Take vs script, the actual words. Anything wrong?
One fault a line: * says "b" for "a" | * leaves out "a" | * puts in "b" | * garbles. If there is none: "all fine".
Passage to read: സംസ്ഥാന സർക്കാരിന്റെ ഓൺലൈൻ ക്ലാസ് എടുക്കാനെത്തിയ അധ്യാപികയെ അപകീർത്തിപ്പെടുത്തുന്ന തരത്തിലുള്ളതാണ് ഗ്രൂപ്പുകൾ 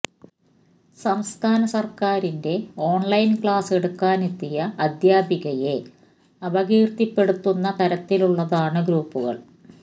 all fine